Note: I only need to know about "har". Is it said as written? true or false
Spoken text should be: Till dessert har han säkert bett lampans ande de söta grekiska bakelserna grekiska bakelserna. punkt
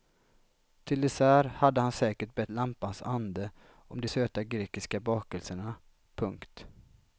false